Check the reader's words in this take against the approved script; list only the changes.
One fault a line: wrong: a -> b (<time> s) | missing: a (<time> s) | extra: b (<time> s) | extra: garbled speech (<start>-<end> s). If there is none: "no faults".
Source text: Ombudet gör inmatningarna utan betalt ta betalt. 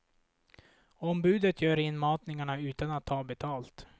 wrong: betalt -> att (2.9 s)